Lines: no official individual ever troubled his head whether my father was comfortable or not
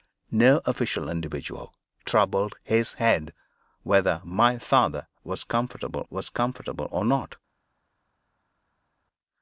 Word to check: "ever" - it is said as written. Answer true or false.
false